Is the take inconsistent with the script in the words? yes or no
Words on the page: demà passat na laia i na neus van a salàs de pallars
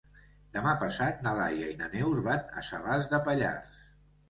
no